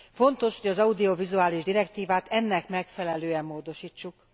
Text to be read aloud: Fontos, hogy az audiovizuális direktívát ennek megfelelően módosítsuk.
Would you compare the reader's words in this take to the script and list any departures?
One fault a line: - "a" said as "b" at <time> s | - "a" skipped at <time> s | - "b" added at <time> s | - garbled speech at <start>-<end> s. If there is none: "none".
none